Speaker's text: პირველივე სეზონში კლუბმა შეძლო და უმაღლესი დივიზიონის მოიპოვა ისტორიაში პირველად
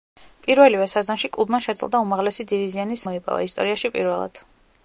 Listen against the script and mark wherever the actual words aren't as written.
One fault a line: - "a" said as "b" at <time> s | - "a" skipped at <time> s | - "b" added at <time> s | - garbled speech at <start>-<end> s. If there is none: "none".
none